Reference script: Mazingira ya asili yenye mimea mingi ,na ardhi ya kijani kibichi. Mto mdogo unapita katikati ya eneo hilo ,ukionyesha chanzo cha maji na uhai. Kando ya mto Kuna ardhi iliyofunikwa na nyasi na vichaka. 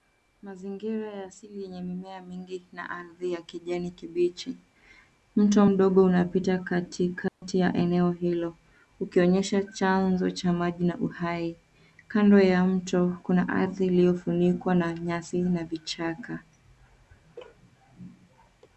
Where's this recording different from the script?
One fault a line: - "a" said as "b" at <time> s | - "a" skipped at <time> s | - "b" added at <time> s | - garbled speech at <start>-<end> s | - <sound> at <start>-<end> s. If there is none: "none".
- dropout at 7.3-7.4 s